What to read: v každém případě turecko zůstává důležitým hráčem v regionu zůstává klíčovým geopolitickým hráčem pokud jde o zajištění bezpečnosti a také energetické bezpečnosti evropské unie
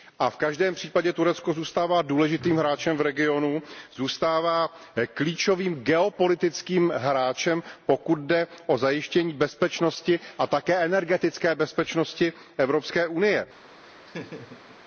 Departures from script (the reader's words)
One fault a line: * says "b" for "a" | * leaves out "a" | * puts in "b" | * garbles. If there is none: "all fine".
all fine